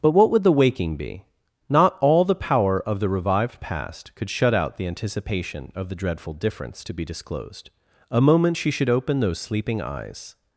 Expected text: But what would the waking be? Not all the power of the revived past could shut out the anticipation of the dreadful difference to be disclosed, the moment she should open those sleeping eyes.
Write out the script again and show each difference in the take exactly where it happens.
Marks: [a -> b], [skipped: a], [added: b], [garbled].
But what would the waking be? Not all the power of the revived past could shut out the anticipation of the dreadful difference to be disclosed, [the -> a] moment she should open those sleeping eyes.